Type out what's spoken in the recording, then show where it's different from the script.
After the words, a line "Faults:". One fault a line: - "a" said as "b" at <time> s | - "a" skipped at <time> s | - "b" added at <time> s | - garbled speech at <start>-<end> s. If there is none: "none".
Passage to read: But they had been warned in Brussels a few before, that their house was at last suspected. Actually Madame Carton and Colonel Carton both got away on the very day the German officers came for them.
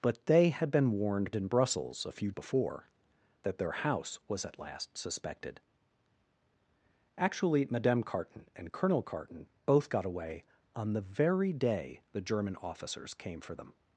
But they had been warned in Brussels a few before, that their house was at last suspected. Actually Madame Carton and Colonel Carton both got away on the very day the German officers came for them.
Faults:
none